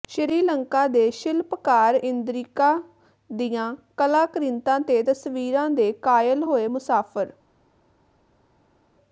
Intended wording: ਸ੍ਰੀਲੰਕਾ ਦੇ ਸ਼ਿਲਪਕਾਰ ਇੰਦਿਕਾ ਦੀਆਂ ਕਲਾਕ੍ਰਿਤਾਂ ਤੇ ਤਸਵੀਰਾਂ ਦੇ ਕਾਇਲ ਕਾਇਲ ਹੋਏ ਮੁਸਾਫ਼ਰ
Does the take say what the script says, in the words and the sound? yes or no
no